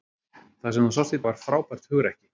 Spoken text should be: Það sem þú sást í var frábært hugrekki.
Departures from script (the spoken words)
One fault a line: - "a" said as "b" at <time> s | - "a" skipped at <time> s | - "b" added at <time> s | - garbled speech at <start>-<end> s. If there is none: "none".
none